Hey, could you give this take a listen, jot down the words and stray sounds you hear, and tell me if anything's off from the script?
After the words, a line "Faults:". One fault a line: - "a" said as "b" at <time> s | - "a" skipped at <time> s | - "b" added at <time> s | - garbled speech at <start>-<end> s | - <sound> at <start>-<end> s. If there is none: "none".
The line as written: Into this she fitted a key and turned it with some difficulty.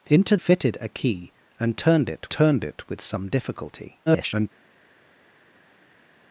Into fitted a key and turned it turned it with some difficulty. [garbled]
Faults:
- "this she" skipped at 0.3 s
- "turned it" added at 2.3 s
- garbled speech at 4.1-4.5 s